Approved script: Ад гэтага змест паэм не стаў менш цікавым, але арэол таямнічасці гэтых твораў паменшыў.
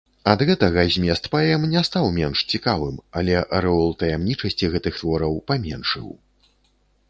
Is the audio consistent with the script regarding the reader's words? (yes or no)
yes